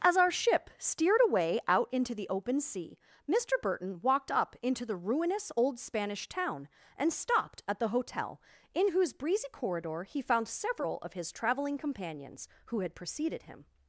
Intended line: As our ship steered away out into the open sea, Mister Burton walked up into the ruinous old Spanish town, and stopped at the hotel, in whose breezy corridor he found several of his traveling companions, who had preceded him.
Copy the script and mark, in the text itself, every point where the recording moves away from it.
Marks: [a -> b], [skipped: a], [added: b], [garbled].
As our ship steered away out into the open sea, Mister Burton walked up into the ruinous old Spanish town, and stopped at the hotel, in whose breezy corridor he found several of his traveling companions, who had preceded him.